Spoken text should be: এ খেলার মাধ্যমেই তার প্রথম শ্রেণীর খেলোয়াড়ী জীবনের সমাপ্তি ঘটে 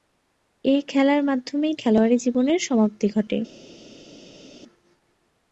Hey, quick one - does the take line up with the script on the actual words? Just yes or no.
no